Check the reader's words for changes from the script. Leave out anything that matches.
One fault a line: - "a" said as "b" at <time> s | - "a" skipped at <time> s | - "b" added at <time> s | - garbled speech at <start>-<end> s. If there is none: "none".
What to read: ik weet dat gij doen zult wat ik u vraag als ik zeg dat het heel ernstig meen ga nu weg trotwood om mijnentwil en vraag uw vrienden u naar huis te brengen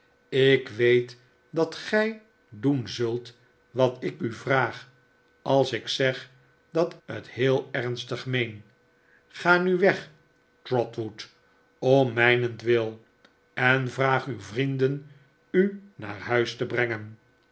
none